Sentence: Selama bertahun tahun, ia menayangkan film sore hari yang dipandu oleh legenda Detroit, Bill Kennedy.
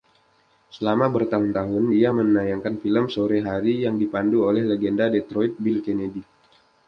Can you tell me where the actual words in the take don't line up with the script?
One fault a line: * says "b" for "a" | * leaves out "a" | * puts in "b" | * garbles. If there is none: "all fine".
all fine